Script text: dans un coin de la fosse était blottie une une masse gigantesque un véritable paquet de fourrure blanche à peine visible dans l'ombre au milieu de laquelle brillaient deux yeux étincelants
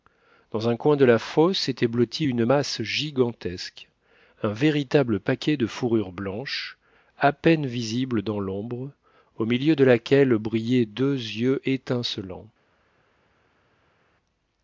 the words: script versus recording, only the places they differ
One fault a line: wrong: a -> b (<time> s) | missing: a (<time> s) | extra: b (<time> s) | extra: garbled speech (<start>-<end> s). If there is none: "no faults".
missing: une (2.4 s)